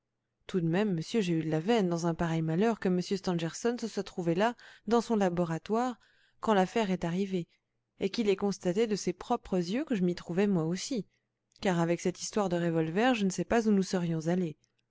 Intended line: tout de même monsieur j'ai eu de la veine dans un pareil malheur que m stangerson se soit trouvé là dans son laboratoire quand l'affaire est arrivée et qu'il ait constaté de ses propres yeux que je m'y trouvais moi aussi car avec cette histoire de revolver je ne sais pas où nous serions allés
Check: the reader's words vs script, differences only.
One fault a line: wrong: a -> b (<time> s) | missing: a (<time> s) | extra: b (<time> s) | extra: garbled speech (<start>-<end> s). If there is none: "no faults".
no faults